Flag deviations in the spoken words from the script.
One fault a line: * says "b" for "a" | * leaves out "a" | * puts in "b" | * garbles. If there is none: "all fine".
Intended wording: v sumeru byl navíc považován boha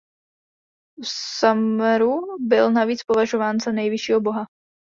* puts in "za nejvyššího"